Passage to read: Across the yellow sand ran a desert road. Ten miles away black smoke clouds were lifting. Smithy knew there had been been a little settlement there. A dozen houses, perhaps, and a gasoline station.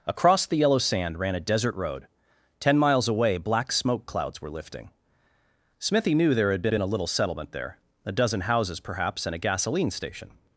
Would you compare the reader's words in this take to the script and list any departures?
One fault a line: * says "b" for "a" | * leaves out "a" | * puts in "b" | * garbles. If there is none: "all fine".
all fine